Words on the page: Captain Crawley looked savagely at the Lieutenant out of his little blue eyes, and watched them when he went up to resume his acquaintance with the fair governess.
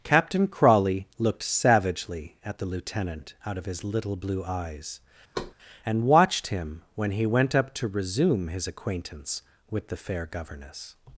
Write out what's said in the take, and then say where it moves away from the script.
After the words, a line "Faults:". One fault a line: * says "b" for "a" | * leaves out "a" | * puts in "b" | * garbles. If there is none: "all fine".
Captain Crawley looked savagely at the Lieutenant out of his little blue eyes, and watched him when he went up to resume his acquaintance with the fair governess.
Faults:
* says "him" for "them"